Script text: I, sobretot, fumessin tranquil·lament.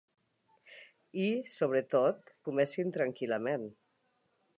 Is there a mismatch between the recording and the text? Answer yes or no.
no